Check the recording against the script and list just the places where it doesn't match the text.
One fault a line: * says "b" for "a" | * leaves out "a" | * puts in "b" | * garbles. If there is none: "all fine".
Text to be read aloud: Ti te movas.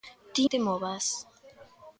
all fine